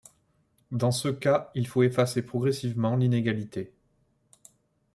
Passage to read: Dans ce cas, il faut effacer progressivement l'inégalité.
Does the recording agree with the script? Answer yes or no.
yes